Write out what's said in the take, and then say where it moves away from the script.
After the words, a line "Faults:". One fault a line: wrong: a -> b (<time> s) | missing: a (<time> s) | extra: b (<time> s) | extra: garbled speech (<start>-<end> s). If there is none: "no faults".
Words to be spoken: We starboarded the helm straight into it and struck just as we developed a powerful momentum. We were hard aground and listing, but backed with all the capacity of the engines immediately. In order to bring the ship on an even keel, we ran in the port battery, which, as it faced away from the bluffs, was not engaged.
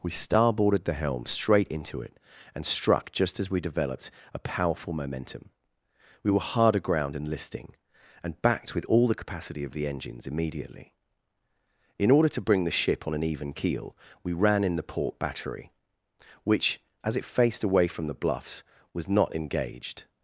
We starboarded the helm straight into it and struck just as we developed a powerful momentum. We were hard aground and listing, and backed with all the capacity of the engines immediately. In order to bring the ship on an even keel, we ran in the port battery, which, as it faced away from the bluffs, was not engaged.
Faults:
wrong: but -> and (8.2 s)